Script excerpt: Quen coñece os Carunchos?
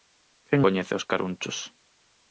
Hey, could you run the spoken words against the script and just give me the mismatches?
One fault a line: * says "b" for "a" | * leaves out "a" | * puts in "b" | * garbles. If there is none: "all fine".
all fine